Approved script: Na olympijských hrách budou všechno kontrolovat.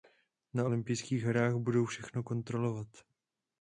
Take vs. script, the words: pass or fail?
pass